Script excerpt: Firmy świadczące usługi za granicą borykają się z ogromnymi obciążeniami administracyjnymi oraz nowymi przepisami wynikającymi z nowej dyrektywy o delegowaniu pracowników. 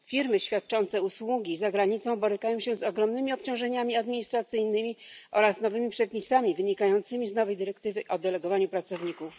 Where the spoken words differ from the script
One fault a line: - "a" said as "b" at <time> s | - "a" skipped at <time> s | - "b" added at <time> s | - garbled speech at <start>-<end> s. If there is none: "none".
none